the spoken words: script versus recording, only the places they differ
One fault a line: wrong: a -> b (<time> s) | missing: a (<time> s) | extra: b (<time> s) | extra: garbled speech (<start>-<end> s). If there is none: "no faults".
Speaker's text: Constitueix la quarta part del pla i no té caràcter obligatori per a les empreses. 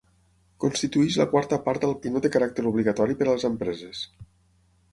missing: pla (1.9 s)